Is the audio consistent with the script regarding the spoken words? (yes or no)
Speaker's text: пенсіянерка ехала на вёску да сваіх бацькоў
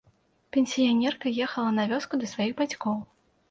yes